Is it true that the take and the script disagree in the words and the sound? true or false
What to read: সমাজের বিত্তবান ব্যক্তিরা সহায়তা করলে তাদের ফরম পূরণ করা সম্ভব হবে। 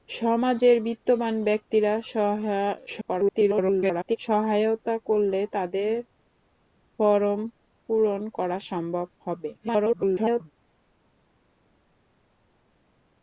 true